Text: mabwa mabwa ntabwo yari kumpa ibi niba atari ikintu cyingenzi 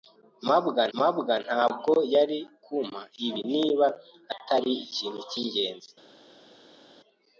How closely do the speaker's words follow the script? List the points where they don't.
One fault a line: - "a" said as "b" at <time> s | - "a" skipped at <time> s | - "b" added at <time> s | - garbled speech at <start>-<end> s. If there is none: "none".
none